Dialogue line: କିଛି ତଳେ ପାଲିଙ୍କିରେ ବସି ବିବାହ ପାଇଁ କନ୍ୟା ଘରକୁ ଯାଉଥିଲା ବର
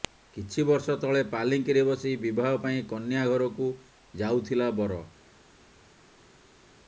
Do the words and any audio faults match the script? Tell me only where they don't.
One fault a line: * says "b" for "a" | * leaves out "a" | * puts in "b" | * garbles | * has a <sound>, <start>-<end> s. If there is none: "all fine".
* puts in "ବର୍ଷ"